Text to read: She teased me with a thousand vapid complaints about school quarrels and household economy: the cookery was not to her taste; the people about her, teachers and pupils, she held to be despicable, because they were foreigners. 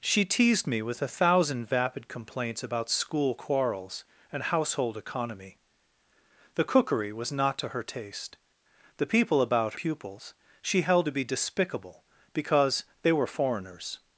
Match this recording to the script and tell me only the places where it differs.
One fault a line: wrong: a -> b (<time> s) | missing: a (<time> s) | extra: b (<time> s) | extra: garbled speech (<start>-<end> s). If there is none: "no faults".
missing: her teachers and (9.8 s)